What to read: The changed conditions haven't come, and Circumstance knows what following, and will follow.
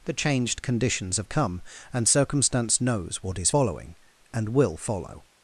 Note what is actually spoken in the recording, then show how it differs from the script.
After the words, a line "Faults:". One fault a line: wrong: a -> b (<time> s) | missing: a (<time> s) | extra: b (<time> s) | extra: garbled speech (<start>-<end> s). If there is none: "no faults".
The changed conditions have come, and Circumstance knows what is following, and will follow.
Faults:
wrong: haven't -> have (1.2 s)
extra: is (3.4 s)